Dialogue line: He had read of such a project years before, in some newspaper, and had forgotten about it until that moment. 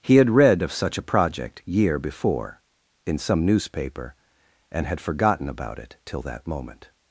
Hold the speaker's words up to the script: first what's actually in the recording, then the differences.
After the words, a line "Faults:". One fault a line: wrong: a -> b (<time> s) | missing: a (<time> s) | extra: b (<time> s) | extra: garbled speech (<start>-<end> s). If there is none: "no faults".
He had read of such a project year before, in some newspaper, and had forgotten about it till that moment.
Faults:
wrong: years -> year (1.6 s)
wrong: until -> till (6.0 s)